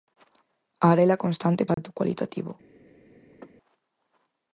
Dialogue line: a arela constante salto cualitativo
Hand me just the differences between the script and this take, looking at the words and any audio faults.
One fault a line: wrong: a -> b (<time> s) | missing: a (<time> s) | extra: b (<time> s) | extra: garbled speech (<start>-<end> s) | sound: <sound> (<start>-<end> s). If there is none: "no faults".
sound: dropout (1.7-1.8 s)
sound: sneeze (3.3-3.5 s)